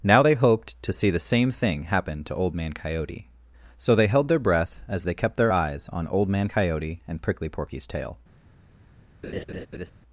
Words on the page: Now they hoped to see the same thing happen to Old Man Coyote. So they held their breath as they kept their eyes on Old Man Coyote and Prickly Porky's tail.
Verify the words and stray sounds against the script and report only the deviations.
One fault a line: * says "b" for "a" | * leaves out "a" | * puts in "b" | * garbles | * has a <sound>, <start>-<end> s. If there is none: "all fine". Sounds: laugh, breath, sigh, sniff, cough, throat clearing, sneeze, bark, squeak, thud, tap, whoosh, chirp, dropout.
* has a laugh, 9.2-9.9 s